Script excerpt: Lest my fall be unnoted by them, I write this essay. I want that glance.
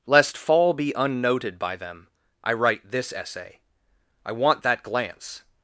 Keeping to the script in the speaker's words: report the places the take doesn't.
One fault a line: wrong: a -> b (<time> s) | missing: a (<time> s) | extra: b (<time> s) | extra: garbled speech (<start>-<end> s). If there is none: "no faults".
missing: my (0.4 s)